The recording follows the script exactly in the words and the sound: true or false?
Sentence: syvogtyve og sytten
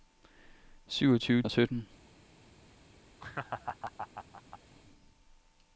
false